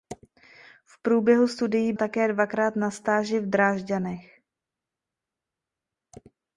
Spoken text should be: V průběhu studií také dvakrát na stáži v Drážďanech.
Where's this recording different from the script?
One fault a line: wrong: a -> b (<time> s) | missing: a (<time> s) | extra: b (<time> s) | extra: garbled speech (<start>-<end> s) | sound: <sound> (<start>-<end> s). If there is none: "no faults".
no faults